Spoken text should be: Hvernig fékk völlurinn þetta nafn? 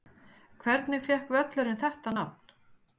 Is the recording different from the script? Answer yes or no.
no